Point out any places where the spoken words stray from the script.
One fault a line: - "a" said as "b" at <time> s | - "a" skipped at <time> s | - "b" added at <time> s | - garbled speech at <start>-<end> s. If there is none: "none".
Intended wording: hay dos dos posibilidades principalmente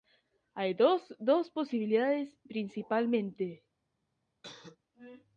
none